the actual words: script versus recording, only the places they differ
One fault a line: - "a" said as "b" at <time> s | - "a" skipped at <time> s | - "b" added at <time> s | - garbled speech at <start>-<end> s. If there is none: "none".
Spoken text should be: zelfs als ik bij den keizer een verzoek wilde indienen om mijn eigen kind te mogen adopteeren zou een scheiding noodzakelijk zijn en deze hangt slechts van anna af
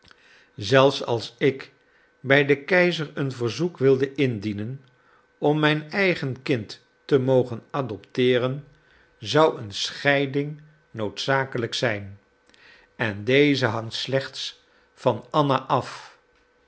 none